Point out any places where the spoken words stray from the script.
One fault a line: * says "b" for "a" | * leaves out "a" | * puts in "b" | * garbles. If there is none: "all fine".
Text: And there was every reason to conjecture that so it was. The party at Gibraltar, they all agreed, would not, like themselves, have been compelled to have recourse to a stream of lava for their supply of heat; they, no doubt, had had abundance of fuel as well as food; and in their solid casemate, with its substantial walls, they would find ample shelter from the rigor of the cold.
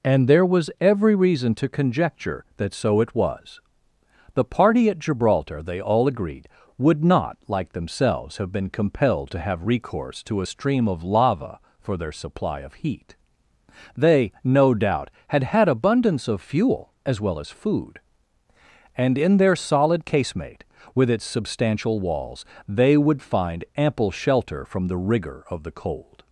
all fine